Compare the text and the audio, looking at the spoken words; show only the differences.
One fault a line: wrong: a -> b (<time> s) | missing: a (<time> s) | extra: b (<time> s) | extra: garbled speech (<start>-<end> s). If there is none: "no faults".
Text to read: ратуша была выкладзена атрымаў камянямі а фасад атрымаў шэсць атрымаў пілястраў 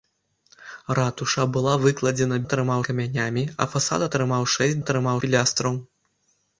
no faults